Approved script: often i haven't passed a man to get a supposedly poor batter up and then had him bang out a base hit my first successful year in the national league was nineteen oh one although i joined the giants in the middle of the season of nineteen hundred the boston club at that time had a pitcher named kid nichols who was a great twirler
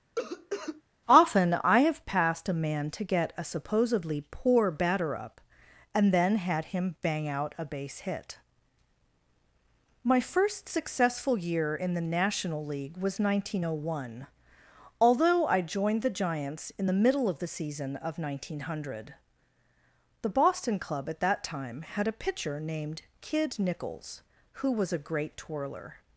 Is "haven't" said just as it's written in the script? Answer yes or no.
no